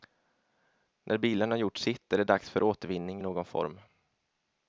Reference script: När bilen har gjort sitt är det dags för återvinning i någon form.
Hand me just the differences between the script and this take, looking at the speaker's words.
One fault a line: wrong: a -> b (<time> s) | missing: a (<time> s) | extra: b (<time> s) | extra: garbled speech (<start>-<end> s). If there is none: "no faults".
no faults